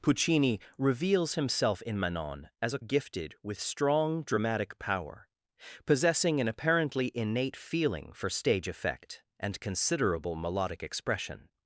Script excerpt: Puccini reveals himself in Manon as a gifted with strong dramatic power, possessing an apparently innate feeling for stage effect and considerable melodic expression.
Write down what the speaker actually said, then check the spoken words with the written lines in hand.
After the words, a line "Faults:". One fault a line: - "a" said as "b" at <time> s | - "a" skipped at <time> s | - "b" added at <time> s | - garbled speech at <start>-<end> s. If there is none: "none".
Puccini reveals himself in Manon as a gifted with strong dramatic power, possessing an apparently innate feeling for stage effect and considerable melodic expression.
Faults:
none